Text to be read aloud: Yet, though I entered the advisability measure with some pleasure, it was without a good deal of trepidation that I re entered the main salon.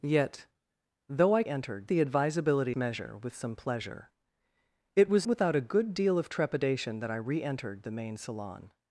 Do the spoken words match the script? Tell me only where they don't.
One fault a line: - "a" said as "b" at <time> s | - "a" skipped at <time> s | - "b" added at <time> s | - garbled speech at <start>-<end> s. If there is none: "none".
none